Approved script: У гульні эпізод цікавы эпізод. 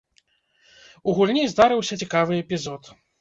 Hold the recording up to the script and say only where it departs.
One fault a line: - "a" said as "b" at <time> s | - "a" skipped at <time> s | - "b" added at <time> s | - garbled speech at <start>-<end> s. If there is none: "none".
- "эпізод" said as "здарыўся" at 1.5 s